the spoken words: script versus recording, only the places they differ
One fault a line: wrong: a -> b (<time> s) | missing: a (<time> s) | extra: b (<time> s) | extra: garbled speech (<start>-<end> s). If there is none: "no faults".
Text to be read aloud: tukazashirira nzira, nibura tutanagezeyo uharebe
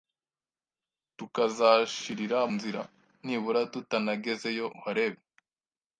no faults